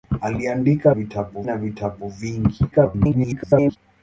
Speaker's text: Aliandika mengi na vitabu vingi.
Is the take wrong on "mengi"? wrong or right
wrong